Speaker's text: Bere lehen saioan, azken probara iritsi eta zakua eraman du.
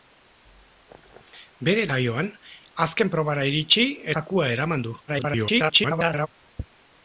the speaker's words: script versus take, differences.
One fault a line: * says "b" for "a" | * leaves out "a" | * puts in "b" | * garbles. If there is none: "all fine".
* leaves out "lehen"
* leaves out "eta"
* garbles